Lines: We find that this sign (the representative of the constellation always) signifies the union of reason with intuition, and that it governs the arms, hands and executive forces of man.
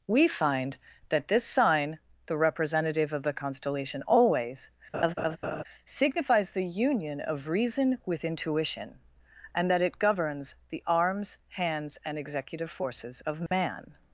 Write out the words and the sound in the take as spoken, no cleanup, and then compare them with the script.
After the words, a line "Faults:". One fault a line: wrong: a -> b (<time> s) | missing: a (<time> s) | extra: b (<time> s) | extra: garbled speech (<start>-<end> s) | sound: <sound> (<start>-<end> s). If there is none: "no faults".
We find that this sign (the representative of the constellation always) signifies the union of reason with intuition, and that it governs the arms, hands and executive forces of man.
Faults:
sound: laugh (4.9-5.6 s)
sound: dropout (13.5-13.5 s)